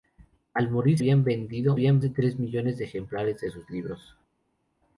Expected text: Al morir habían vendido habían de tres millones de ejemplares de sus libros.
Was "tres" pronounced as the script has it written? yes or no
yes